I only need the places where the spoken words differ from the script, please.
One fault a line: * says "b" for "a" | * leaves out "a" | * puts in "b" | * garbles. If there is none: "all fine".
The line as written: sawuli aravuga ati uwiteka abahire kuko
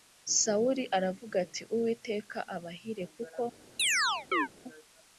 all fine